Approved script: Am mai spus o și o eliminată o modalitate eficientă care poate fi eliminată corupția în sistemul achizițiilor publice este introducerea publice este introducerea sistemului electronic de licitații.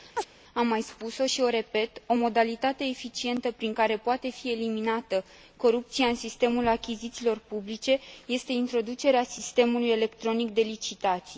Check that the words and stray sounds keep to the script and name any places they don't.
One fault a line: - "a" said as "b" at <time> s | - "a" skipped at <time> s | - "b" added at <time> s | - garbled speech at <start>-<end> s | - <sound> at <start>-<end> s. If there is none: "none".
- chirp at 0.2-0.3 s
- "eliminată" said as "repet" at 1.5 s
- "prin" added at 3.5 s
- "publice este introducerea" skipped at 9.2 s